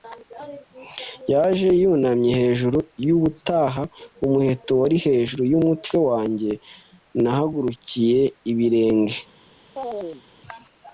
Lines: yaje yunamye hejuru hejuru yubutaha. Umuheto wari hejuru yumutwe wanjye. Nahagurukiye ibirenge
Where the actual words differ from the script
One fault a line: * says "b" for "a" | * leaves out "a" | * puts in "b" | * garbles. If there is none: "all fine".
* leaves out "hejuru"